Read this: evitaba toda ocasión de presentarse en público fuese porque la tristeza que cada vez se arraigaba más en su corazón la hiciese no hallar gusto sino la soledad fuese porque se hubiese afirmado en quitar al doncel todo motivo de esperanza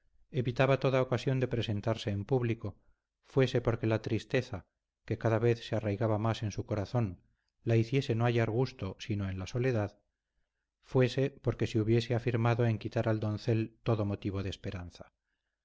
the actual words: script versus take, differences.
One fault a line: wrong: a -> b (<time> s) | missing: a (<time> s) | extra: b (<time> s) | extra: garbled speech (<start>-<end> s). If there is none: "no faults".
extra: en (9.3 s)